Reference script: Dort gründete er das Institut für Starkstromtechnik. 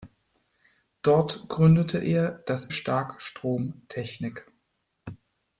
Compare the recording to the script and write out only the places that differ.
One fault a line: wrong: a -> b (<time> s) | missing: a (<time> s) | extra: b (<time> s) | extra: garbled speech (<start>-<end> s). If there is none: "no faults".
missing: Institut für (2.7 s)